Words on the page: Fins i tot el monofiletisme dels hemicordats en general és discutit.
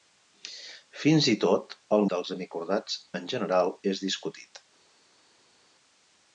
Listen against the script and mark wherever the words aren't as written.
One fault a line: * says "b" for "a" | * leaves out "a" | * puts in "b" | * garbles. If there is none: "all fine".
* leaves out "monofiletisme"